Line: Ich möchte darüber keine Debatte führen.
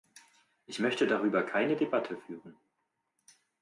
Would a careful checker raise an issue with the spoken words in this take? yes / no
no